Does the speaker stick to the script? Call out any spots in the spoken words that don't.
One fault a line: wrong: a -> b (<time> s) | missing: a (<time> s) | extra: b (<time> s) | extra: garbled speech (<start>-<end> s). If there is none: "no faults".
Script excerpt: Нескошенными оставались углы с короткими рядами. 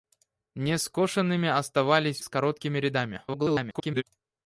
missing: углы (2.2 s)
extra: garbled speech (3.3-4.0 s)